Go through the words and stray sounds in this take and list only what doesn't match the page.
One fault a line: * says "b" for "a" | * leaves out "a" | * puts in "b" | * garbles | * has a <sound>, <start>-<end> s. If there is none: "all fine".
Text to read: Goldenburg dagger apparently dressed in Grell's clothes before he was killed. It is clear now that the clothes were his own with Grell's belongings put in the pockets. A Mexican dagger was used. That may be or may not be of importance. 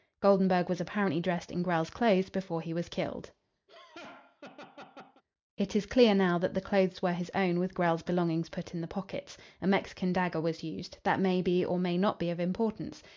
* says "was" for "dagger"
* has a laugh, 3.7-5.2 s